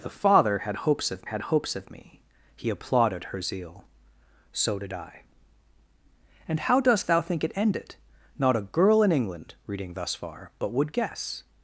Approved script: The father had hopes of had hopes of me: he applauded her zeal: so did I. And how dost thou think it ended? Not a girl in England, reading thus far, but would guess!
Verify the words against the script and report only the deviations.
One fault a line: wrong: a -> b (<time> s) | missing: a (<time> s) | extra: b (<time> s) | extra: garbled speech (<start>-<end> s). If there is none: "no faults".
no faults